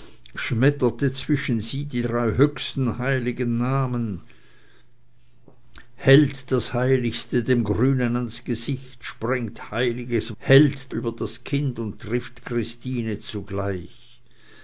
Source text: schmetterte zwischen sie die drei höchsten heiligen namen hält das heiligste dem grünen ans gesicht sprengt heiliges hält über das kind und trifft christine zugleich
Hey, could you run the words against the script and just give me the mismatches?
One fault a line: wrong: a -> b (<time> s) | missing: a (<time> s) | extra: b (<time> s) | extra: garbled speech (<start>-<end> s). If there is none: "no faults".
no faults